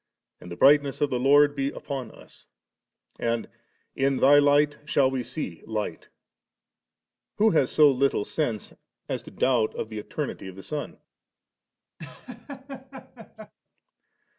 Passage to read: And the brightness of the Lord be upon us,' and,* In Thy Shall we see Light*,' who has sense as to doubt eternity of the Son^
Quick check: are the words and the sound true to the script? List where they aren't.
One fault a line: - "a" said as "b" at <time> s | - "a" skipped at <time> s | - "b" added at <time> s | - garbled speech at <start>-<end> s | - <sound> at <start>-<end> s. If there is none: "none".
- "Light" added at 4.4 s
- "so little" added at 7.7 s
- "of the" added at 9.7 s
- laugh at 12.0-13.5 s